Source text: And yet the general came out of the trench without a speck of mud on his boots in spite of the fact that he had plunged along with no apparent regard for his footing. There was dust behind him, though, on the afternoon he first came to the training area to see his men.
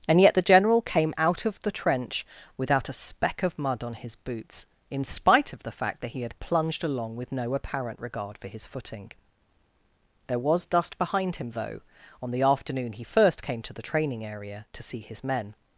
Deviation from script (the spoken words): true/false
false